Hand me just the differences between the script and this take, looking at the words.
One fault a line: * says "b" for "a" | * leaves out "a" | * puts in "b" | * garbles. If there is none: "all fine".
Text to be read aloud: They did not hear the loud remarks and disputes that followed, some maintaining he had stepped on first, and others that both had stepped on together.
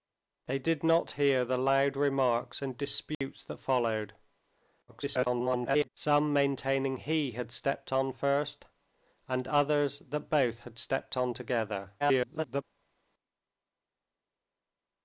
* garbles
* garbles